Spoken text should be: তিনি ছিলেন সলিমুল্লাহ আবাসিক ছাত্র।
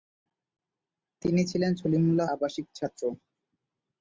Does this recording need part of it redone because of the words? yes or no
no